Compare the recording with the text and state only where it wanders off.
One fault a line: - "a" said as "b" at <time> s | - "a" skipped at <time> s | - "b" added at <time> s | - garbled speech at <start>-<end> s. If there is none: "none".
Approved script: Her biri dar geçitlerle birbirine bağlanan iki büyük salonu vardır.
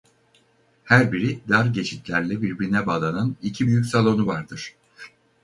none